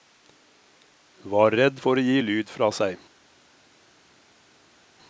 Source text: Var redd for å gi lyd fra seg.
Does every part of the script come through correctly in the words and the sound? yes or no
yes